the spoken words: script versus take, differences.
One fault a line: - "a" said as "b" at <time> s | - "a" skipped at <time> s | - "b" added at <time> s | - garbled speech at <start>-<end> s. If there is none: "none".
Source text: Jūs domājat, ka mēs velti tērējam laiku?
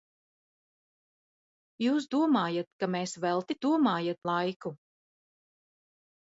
- "tērējam" said as "domājat" at 3.7 s